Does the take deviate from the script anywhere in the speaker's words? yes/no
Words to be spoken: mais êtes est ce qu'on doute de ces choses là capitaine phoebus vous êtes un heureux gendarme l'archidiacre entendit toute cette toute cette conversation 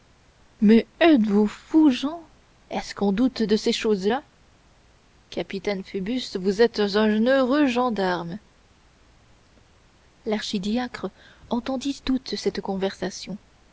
yes